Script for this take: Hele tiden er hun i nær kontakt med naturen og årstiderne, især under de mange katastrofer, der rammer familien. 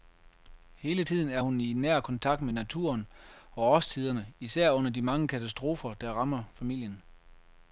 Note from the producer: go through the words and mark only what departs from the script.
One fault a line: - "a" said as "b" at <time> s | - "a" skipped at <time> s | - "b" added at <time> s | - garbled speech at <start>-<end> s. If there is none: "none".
none